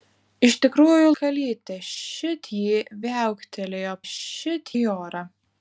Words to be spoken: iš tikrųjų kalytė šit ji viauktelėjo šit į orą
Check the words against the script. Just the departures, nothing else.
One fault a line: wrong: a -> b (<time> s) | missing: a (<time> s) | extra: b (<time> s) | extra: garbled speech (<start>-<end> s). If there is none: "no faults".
no faults